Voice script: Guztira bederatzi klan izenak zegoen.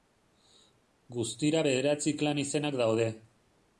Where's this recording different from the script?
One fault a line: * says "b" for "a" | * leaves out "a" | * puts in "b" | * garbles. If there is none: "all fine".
* says "daude" for "zegoen"